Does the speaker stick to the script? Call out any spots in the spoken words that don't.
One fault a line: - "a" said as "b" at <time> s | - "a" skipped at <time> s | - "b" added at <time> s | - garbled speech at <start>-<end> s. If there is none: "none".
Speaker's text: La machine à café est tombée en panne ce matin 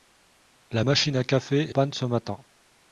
- "est tombée en" skipped at 1.7 s